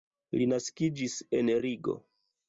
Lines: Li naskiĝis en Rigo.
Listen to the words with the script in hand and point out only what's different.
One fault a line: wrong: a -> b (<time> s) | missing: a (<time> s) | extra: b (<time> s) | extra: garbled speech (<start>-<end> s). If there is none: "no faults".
no faults